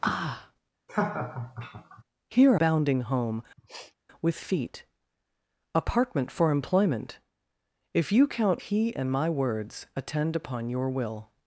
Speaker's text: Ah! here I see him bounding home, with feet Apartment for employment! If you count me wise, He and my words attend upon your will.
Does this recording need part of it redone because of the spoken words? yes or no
yes